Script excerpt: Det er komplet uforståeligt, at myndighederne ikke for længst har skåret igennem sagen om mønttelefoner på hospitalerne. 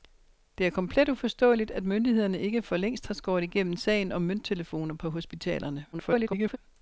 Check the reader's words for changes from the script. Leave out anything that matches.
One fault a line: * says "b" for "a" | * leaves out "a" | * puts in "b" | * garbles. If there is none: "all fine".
* garbles